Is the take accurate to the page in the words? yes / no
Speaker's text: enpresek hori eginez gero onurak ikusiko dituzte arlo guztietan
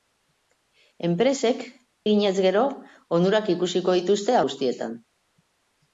no